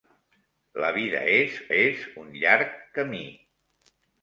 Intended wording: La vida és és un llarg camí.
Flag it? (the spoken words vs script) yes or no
no